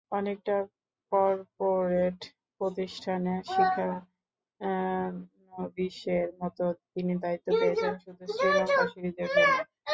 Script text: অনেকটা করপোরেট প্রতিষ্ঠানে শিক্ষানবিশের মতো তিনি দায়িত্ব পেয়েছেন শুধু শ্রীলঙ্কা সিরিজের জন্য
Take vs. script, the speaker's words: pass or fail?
pass